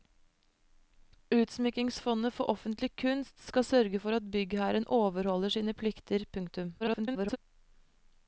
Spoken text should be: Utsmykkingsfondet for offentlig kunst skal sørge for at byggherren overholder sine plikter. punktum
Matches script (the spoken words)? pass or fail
fail